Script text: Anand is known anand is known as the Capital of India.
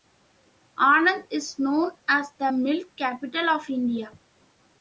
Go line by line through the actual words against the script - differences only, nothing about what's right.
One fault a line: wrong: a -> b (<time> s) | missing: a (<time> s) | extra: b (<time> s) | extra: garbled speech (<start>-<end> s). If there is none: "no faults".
missing: anand is known (1.9 s)
extra: Milk (2.5 s)